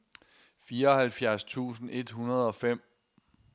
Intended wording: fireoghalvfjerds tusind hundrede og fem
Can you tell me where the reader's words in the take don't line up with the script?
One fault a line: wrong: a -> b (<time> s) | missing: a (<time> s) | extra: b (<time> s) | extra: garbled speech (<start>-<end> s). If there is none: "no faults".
extra: et (1.9 s)